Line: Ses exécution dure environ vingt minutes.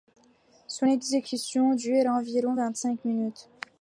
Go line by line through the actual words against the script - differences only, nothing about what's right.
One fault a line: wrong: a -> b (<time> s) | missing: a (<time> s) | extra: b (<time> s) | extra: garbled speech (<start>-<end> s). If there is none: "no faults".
wrong: Ses -> Son (0.7 s)
extra: cinq (2.7 s)